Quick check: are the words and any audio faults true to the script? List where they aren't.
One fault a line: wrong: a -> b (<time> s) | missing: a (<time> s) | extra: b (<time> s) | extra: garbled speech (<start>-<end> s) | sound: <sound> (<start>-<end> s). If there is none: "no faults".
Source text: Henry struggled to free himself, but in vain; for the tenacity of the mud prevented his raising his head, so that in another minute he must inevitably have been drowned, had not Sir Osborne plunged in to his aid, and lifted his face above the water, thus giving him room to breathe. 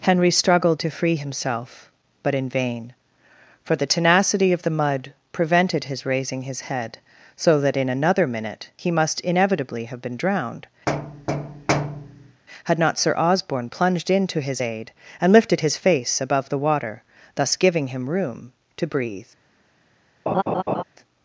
sound: thud (10.9-12.4 s)
sound: laugh (20.3-20.8 s)